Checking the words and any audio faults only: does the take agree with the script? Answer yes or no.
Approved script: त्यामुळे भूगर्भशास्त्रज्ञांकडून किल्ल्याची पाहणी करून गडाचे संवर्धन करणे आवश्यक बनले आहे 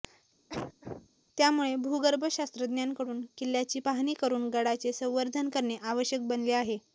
no